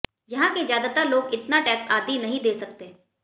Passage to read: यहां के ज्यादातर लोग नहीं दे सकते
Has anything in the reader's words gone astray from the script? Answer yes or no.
yes